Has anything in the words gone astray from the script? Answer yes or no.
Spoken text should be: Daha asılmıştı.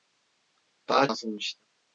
no